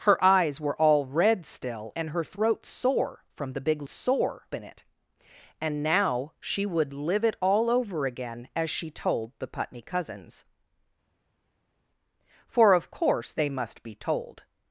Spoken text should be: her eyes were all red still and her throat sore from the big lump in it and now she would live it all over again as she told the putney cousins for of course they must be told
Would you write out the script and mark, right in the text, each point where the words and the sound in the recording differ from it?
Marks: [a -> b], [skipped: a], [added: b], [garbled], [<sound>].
her eyes were all red still and her throat sore from the big [lump -> sore] in it and now she would live it all over again as she told the putney cousins for of course they must be told